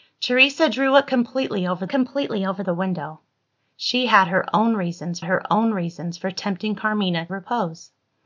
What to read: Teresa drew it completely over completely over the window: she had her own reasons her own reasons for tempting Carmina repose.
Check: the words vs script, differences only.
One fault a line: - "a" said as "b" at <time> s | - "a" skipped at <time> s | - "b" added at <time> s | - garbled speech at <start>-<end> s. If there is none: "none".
none